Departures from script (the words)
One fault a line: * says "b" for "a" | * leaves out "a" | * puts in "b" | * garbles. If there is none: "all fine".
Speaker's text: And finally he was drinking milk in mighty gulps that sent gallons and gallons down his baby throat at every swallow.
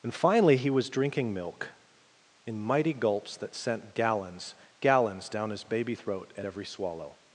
* leaves out "and"